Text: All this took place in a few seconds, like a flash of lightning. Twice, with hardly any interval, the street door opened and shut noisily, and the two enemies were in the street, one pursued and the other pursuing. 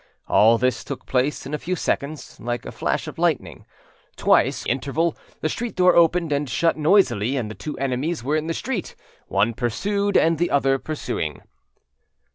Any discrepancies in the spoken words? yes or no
yes